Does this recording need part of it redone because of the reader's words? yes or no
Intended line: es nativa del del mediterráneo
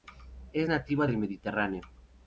yes